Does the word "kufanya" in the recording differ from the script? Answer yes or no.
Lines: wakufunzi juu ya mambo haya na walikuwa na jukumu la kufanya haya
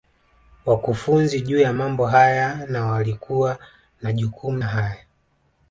yes